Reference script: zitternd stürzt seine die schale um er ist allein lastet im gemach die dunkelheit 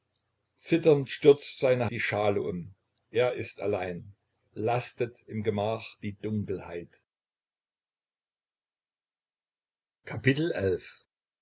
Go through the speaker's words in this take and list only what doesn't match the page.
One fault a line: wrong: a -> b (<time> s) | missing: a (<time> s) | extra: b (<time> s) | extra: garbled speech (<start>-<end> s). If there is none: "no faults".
no faults